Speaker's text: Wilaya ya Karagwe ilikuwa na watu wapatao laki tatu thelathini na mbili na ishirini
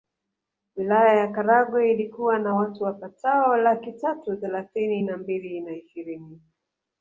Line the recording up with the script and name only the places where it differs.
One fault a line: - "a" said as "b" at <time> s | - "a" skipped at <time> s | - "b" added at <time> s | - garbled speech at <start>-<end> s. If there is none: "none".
none